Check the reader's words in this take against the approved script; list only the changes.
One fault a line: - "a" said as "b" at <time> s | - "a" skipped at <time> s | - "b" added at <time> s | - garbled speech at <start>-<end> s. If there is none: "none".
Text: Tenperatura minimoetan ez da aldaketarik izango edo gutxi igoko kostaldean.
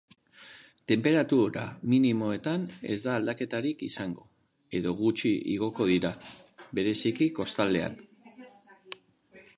- "dira bereziki" added at 5.9 s